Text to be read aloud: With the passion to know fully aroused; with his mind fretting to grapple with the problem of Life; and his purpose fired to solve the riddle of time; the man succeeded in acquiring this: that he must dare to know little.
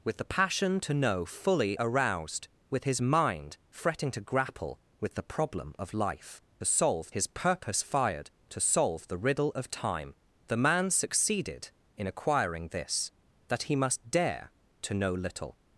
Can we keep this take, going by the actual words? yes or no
no